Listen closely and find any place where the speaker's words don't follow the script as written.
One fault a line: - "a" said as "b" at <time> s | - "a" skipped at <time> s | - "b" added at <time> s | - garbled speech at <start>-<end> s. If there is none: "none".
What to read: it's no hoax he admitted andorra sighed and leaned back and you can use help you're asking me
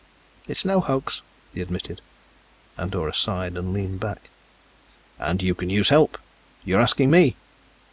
none